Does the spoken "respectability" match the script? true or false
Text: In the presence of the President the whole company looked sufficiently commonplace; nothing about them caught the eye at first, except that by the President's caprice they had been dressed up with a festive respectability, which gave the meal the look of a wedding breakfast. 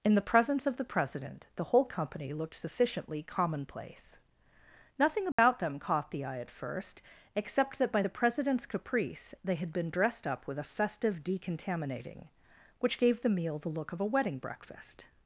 false